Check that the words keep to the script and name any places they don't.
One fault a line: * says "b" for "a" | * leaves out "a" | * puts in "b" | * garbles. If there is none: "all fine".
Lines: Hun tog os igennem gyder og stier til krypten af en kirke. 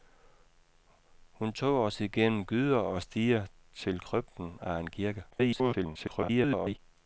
* garbles